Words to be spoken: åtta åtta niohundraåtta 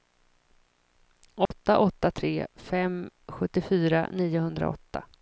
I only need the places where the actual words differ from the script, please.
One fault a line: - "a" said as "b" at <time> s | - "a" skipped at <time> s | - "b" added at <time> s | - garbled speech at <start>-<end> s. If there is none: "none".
- "tre fem sjuttiofyra" added at 2.1 s